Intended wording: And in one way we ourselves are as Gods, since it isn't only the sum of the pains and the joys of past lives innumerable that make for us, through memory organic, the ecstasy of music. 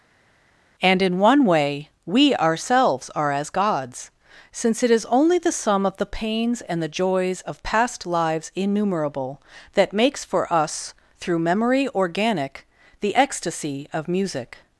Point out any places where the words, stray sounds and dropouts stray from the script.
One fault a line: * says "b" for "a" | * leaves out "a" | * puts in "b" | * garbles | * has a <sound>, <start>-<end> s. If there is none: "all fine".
* says "is" for "isn't"
* says "makes" for "make"